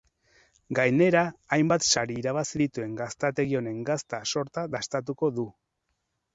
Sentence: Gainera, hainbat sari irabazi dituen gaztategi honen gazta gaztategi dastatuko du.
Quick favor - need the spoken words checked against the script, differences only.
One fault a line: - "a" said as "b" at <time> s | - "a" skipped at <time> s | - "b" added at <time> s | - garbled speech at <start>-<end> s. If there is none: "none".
- "gaztategi" said as "sorta" at 4.4 s